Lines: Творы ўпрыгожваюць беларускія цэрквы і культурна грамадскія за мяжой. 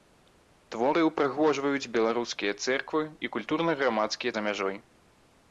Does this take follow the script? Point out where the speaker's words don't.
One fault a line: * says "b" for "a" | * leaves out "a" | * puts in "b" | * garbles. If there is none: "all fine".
all fine